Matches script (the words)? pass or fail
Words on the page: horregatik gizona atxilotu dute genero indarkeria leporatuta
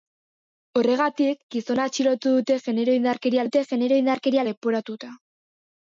fail